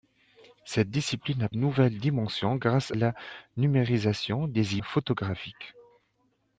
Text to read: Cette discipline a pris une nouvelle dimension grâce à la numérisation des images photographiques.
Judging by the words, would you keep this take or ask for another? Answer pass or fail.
fail